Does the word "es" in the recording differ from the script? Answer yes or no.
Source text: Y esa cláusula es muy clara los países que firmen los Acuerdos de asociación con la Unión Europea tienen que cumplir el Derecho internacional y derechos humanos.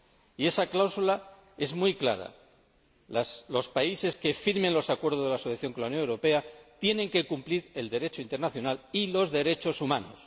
no